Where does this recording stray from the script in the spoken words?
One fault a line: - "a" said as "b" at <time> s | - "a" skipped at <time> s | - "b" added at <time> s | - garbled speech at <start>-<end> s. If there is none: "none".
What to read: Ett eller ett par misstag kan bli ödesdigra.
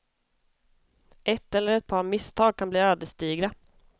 none